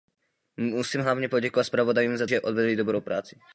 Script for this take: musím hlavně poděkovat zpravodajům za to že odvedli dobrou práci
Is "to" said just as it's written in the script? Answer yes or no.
no